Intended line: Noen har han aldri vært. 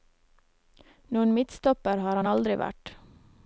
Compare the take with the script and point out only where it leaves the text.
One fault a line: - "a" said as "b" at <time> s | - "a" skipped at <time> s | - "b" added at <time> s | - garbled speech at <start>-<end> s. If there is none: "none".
- "midtstopper" added at 1.4 s